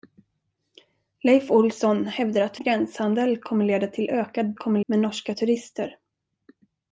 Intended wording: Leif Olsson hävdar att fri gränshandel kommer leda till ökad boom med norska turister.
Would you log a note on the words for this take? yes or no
yes